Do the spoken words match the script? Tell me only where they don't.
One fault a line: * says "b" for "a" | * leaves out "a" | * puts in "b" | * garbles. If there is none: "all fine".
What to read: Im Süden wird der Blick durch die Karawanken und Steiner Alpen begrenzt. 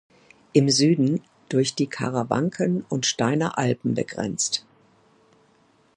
* leaves out "wird der Blick"